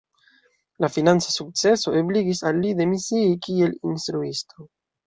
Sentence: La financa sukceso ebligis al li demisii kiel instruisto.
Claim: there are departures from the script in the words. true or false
false